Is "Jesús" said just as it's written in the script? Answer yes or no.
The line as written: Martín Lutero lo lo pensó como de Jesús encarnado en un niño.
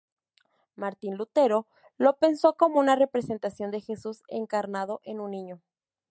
yes